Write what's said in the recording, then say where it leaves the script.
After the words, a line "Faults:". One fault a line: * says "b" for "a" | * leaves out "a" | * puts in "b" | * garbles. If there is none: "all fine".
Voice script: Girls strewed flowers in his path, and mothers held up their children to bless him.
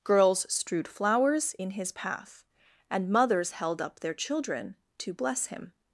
Girls strewed flowers in his path, and mothers held up their children to bless him.
Faults:
all fine